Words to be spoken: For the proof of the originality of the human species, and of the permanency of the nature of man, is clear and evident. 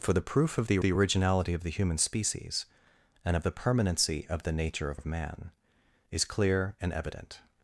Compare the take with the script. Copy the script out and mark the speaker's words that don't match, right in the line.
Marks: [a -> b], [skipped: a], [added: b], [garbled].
For the proof of the [added: the] originality of the human species, and of the permanency of the nature of [added: of] man, is clear and evident.